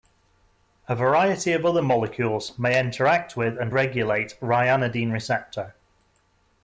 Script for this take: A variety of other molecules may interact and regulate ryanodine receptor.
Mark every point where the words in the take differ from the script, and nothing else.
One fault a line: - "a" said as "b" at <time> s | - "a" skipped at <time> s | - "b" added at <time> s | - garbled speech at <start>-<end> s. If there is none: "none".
- "with" added at 3.4 s